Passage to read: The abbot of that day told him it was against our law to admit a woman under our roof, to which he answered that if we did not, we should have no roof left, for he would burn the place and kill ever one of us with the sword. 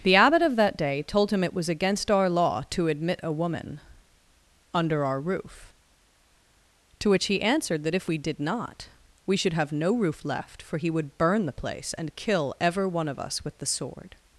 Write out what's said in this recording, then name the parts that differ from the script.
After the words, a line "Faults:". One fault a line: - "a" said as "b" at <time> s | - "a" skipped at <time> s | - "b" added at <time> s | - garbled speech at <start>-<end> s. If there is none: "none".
The abbot of that day told him it was against our law to admit a woman under our roof, to which he answered that if we did not, we should have no roof left, for he would burn the place and kill ever one of us with the sword.
Faults:
none